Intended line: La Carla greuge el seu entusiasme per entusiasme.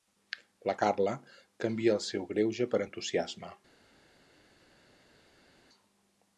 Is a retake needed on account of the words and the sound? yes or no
yes